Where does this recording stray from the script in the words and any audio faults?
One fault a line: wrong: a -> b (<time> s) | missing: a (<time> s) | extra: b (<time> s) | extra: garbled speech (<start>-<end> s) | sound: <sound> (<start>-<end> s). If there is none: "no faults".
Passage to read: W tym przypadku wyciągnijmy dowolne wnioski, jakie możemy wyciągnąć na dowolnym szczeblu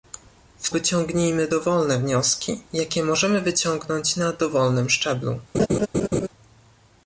missing: tym przypadku (0.7 s)
sound: laugh (5.5-6.3 s)